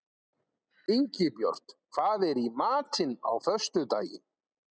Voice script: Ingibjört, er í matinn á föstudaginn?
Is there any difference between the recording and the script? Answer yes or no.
yes